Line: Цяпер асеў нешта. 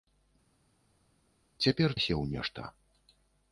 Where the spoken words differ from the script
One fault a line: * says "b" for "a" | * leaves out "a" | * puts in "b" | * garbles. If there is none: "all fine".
all fine